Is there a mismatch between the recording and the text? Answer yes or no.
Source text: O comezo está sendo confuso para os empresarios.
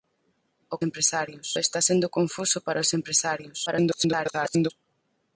yes